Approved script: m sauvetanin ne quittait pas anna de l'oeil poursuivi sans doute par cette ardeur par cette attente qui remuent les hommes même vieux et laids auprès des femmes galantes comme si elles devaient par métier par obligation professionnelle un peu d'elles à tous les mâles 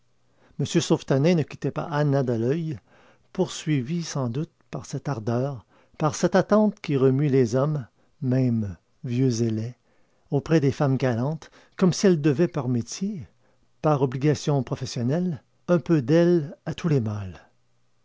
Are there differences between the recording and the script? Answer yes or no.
no